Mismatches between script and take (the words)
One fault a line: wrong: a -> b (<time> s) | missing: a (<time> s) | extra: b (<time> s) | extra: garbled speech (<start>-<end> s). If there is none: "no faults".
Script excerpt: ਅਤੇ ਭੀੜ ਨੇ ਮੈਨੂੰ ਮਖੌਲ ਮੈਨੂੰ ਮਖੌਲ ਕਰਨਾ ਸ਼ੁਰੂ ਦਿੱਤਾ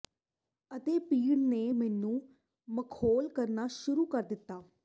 missing: ਮੈਨੂੰ ਮਖੌਲ (3.3 s)
extra: ਕਰ (4.1 s)